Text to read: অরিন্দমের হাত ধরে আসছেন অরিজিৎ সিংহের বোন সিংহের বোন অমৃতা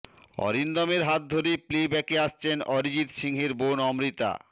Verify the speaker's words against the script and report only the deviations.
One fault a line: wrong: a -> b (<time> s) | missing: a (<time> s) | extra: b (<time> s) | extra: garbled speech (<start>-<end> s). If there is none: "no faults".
extra: প্লে ব্যাকে (1.7 s)
missing: সিংহের বোন (3.8 s)